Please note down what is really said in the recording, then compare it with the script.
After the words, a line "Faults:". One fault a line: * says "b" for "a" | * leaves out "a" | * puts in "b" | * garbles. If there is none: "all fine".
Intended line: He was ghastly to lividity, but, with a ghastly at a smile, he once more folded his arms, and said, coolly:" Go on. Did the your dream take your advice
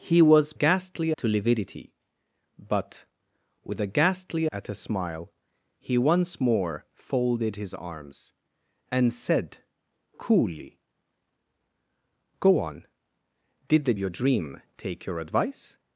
He was ghastly to lividity, but, with a ghastly at a smile, he once more folded his arms, and said, coolly:" Go on. Did the your dream take your advice
Faults:
all fine